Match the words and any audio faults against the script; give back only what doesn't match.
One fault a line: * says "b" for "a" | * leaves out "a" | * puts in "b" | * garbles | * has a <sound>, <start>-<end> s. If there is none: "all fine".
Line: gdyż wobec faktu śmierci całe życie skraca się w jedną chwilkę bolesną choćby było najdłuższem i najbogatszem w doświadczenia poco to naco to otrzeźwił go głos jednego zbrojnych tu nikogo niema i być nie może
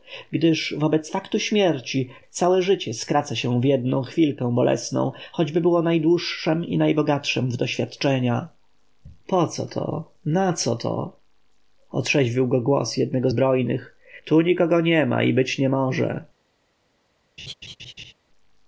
* has a laugh, 17.4-18.1 s